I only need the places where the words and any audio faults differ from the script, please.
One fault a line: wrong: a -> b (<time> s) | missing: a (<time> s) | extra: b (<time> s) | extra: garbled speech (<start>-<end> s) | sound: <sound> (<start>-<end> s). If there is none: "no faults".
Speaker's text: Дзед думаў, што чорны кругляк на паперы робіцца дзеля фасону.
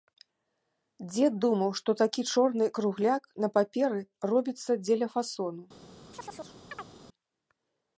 extra: такі (2.0 s)
sound: chirp (6.1-6.9 s)